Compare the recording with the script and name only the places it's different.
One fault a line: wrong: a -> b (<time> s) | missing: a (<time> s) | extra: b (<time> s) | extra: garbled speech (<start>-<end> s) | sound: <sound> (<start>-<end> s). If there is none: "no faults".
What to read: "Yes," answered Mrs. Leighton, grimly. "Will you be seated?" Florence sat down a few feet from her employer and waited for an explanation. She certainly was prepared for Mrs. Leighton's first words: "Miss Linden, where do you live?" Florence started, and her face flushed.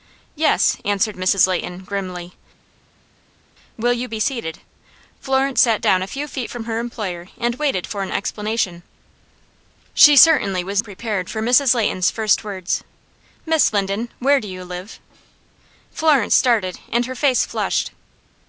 no faults